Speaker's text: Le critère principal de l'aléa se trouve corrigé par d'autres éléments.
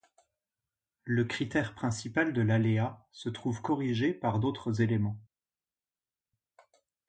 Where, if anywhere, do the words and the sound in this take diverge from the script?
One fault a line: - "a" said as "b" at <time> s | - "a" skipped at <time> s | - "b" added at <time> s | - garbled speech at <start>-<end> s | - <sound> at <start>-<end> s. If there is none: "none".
none